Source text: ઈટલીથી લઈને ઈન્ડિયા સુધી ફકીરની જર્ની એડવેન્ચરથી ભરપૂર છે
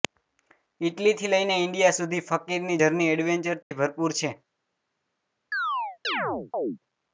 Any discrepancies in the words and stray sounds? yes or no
yes